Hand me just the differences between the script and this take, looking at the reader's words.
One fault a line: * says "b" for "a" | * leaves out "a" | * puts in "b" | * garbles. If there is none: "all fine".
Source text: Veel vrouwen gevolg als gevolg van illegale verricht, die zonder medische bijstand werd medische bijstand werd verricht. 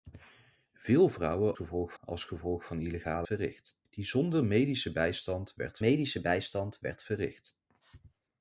all fine